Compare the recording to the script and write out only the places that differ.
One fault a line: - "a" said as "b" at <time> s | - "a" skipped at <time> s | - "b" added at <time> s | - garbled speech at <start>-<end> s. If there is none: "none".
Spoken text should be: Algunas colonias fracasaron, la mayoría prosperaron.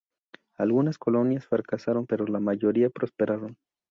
- "pero" added at 2.0 s